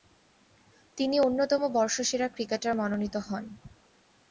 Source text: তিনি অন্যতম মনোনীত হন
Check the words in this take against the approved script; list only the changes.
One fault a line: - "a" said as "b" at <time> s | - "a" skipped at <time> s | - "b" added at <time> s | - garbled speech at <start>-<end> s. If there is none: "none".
- "বর্ষসেরা ক্রিকেটার" added at 1.7 s